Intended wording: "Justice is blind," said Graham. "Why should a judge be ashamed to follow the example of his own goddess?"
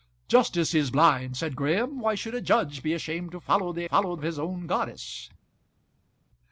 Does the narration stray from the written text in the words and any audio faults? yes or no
yes